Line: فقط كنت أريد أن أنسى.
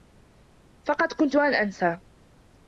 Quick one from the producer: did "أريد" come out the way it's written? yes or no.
no